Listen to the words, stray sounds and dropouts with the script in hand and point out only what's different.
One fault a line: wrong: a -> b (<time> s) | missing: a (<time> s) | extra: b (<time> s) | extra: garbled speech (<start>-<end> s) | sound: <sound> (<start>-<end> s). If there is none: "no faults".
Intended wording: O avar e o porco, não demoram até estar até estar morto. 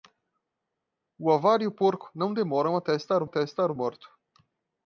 no faults